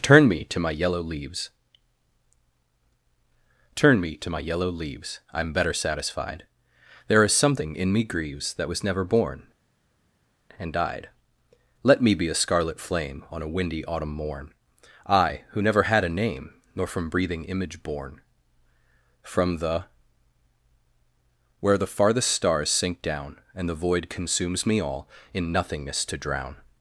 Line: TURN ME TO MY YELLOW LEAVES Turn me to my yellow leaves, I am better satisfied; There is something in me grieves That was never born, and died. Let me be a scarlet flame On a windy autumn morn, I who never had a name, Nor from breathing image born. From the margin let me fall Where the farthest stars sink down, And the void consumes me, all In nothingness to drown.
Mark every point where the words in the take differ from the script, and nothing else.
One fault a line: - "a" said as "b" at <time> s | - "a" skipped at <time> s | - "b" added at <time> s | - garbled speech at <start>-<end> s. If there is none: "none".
- "margin let me fall" skipped at 19.8 s